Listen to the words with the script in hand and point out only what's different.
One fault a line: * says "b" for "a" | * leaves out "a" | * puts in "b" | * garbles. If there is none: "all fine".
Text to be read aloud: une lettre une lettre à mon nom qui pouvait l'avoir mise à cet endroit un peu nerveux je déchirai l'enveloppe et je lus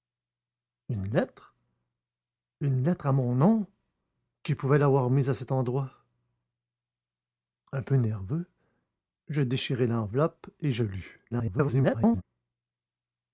* garbles